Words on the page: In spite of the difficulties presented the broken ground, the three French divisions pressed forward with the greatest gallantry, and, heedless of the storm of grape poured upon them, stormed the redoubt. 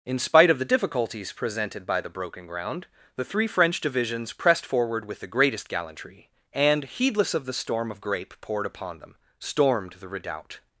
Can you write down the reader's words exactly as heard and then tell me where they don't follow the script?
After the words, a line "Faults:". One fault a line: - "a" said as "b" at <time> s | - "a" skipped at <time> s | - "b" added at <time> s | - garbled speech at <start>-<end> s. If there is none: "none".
In spite of the difficulties presented by the broken ground, the three French divisions pressed forward with the greatest gallantry, and, heedless of the storm of grape poured upon them, stormed the redoubt.
Faults:
- "by" added at 1.9 s